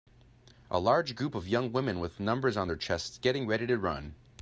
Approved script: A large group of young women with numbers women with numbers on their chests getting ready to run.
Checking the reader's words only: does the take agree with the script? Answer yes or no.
no